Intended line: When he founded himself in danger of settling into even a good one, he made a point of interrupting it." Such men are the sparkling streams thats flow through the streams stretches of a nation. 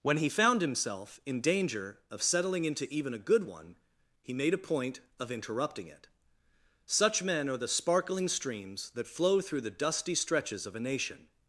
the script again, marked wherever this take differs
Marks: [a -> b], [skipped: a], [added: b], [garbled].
When he [founded -> found] himself in danger of settling into even a good one, he made a point of interrupting it." Such men are the sparkling streams [thats -> that] flow through the [streams -> dusty] stretches of a nation.